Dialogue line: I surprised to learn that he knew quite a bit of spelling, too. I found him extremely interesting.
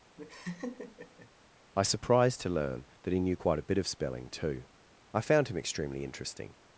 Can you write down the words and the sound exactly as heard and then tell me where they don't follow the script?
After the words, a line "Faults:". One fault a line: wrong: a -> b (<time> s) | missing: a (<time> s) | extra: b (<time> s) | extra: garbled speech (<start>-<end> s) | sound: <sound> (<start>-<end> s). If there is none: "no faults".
I surprised to learn that he knew quite a bit of spelling, too. I found him extremely interesting.
Faults:
sound: laugh (0.2-1.3 s)